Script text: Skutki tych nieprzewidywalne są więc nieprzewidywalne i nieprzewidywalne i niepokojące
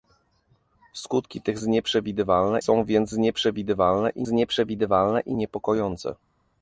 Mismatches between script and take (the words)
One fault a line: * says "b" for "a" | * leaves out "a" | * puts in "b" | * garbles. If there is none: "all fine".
all fine